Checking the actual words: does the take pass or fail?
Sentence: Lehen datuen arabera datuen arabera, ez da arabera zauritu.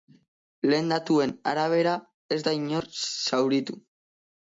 fail